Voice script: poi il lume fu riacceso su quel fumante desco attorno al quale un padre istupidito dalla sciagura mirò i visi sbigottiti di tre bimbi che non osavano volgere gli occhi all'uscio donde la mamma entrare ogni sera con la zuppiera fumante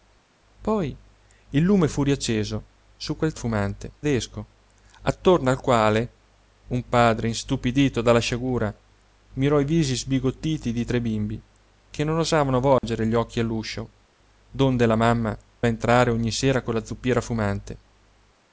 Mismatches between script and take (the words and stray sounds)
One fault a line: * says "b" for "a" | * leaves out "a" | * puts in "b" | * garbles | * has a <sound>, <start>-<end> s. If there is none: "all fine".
* has a dropout, 12.8-12.8 s